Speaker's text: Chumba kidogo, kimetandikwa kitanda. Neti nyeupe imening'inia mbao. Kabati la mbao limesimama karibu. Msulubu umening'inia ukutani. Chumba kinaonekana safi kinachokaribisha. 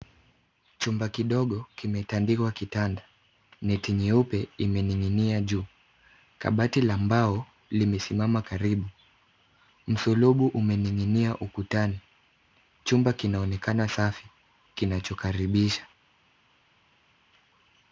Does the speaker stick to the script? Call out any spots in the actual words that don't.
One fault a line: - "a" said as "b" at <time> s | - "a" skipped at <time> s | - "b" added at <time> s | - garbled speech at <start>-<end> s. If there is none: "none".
- "mbao" said as "juu" at 5.4 s